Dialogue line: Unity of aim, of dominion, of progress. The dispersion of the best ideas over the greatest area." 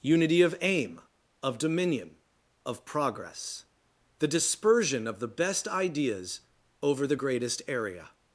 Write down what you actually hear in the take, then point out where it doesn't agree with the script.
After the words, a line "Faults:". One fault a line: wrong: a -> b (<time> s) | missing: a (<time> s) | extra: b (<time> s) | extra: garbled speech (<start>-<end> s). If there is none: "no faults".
Unity of aim, of dominion, of progress. The dispersion of the best ideas over the greatest area."
Faults:
no faults